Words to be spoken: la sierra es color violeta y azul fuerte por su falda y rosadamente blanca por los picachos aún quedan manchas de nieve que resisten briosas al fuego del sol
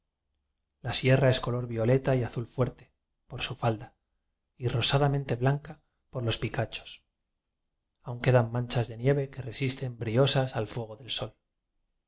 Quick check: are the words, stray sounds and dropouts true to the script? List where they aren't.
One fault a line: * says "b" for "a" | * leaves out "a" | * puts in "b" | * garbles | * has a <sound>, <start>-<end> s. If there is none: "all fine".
all fine